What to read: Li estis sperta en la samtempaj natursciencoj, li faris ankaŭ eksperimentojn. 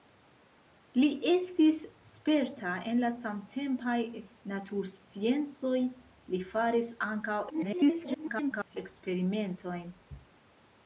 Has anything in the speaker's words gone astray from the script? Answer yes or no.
yes